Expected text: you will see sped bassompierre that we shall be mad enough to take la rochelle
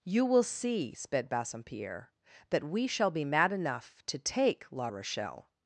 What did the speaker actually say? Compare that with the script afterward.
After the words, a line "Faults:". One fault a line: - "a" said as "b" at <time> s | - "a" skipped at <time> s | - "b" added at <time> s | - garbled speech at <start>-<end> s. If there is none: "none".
you will see sped bassompierre that we shall be mad enough to take la rochelle
Faults:
none